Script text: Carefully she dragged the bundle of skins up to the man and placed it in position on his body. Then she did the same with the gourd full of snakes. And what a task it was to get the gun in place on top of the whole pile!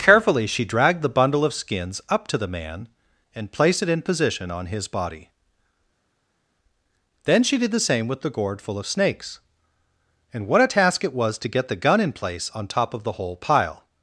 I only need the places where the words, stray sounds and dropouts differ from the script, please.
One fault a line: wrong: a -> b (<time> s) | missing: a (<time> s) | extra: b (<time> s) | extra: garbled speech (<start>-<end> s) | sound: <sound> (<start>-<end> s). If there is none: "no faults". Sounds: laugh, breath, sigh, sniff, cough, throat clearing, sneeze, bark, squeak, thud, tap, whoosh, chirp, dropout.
no faults